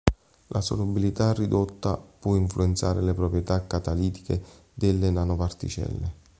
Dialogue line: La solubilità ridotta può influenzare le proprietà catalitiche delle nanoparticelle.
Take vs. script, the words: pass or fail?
pass